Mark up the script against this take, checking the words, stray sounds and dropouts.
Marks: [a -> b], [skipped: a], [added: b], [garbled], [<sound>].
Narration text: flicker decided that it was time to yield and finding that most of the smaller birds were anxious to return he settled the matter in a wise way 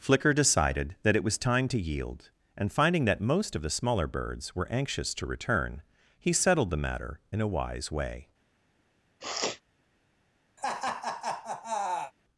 flicker decided that it was time to yield and finding that most of the smaller birds were anxious to return he settled the matter in a wise way [sniff] [laugh]